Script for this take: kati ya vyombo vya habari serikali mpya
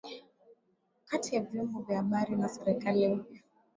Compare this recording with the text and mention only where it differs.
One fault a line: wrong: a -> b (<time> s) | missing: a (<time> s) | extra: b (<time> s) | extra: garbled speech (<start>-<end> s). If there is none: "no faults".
extra: na (2.4 s)